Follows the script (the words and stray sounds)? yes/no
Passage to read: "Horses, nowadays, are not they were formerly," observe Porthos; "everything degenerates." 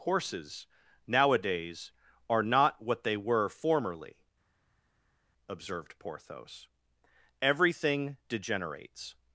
no